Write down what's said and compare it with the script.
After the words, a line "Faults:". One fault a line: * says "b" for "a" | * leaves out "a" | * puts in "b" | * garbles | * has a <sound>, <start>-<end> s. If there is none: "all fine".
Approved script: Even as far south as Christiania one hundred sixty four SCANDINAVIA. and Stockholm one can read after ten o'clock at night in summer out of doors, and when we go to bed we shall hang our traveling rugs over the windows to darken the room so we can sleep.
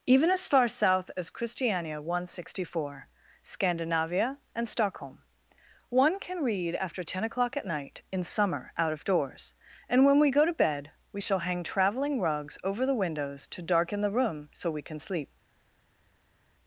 Even as far south as Christiania one hundred sixty four SCANDINAVIA. and Stockholm one can read after ten o'clock at night in summer out of doors, and when we go to bed we shall hang traveling rugs over the windows to darken the room so we can sleep.
Faults:
* leaves out "our"